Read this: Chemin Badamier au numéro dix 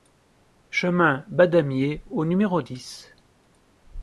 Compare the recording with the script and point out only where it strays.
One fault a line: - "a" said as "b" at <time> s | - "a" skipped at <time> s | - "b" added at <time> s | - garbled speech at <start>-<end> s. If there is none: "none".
none